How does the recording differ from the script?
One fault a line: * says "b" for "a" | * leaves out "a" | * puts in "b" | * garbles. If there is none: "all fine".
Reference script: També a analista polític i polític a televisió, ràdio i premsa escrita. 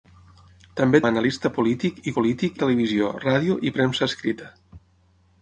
all fine